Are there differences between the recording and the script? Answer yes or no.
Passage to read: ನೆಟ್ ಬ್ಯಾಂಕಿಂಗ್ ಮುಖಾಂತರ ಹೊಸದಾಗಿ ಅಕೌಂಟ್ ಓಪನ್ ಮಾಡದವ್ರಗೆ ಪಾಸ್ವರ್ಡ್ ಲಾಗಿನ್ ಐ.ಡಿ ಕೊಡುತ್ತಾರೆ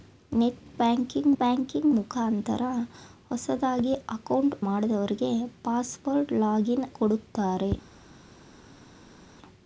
yes